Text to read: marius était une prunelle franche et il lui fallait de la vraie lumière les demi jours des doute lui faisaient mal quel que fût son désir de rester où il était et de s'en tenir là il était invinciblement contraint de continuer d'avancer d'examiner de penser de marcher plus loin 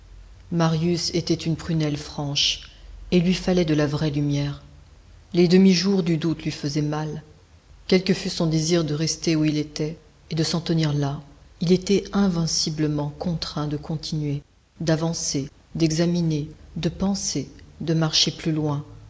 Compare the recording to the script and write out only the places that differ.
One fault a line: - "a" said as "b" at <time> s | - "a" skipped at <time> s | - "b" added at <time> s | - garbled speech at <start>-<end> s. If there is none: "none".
- "des" said as "du" at 6.0 s